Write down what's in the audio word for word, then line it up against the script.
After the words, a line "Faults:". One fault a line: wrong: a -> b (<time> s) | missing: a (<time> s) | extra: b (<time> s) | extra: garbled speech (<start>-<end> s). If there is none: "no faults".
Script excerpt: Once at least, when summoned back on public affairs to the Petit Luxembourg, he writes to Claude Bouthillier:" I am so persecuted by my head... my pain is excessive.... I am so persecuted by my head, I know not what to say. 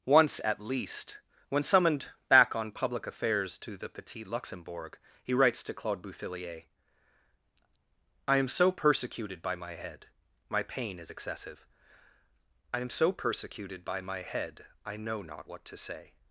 Once at least, when summoned back on public affairs to the Petit Luxembourg, he writes to Claude Bouthillier:" I am so persecuted by my head... my pain is excessive.... I am so persecuted by my head, I know not what to say.
Faults:
no faults